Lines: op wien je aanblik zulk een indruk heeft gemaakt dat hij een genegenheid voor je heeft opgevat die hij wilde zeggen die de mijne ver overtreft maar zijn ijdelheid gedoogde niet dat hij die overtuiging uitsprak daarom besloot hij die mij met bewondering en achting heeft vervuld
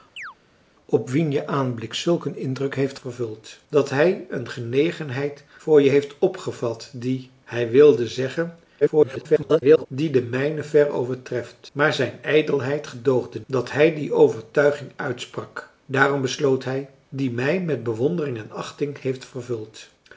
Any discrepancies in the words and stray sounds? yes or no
yes